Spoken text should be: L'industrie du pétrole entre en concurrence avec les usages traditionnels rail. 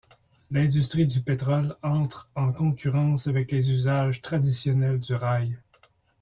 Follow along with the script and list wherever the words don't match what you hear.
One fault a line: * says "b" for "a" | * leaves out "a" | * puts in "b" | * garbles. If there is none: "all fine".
* puts in "du"